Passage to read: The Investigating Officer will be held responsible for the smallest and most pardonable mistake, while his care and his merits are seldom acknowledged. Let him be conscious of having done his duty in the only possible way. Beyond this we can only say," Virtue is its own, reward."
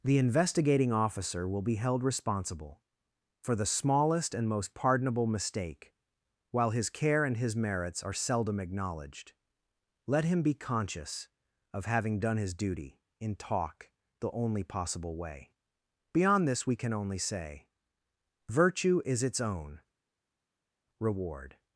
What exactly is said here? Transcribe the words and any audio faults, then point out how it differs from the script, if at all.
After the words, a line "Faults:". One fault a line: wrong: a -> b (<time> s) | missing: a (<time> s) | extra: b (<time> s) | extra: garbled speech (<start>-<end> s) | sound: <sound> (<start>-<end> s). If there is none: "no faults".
The Investigating Officer will be held responsible for the smallest and most pardonable mistake, while his care and his merits are seldom acknowledged. Let him be conscious of having done his duty in talk the only possible way. Beyond this we can only say," Virtue is its own, reward."
Faults:
extra: talk (13.3 s)